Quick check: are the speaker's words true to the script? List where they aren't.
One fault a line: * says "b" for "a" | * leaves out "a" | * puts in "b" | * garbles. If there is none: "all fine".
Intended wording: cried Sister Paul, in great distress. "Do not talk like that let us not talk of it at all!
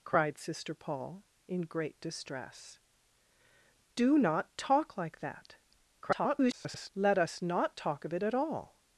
* garbles